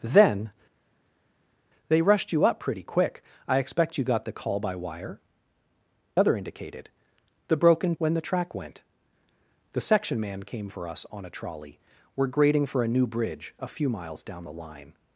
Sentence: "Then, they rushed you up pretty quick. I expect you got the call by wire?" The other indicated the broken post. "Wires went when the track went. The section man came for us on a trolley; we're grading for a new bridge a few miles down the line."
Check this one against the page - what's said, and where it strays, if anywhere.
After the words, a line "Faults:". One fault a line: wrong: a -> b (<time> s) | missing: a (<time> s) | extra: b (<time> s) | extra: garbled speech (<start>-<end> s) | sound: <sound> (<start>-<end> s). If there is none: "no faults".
"Then, they rushed you up pretty quick. I expect you got the call by wire?" Other indicated the broken when the track went. The section man came for us on a trolley; we're grading for a new bridge a few miles down the line."
Faults:
missing: The (5.2 s)
missing: post Wires went (7.9 s)